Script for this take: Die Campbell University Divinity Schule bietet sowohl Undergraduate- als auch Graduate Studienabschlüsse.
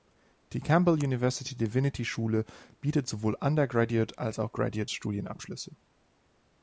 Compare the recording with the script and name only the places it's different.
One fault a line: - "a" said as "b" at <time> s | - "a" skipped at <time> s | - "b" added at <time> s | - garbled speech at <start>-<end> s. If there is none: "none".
none